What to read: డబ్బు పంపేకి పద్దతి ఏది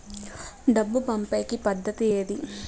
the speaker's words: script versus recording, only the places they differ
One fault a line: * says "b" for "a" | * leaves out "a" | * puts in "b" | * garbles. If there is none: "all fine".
all fine